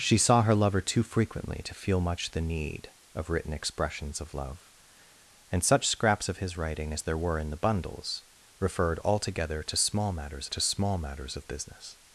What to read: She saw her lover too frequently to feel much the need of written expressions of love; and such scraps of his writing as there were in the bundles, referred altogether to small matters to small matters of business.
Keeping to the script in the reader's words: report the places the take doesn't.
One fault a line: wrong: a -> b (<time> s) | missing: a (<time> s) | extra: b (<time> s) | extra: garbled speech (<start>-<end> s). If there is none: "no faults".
no faults